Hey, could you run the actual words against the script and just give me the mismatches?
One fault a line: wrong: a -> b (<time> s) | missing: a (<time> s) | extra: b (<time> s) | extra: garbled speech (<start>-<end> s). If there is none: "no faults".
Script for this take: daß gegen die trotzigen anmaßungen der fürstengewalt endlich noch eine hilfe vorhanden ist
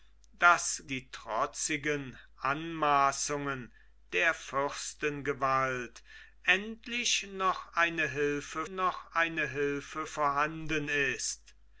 missing: gegen (0.8 s)
extra: noch eine hilfe (8.7 s)